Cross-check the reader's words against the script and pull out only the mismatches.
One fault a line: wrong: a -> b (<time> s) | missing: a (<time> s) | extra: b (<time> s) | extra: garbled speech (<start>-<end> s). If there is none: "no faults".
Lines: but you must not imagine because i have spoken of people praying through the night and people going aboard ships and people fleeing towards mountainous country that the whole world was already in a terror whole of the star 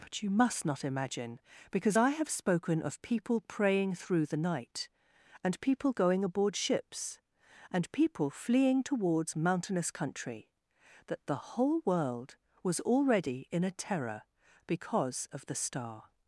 wrong: whole -> because (14.7 s)